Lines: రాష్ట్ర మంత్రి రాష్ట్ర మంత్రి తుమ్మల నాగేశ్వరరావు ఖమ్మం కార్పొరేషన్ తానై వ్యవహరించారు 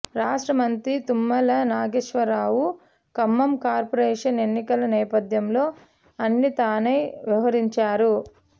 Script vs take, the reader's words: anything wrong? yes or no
yes